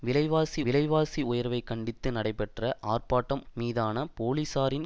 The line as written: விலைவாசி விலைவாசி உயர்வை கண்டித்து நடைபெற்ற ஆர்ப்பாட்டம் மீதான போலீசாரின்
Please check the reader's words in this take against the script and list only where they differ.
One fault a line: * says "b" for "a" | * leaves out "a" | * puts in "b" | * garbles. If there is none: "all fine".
all fine